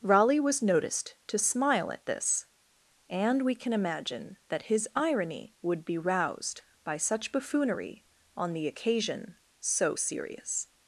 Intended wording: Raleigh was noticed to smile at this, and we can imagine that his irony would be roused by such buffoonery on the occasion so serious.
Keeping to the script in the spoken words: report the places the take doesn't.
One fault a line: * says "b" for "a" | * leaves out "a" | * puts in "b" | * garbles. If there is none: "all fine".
all fine